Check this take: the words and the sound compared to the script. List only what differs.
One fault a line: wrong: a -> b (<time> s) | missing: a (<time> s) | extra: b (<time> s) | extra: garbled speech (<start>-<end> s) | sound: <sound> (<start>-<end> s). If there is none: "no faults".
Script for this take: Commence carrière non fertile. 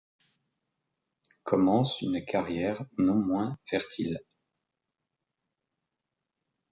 extra: une (2.0 s)
extra: moins (3.1 s)